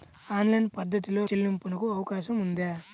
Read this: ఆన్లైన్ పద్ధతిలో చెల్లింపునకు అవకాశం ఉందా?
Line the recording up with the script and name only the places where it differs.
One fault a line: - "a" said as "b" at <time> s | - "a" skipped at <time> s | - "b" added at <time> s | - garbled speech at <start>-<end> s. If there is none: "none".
none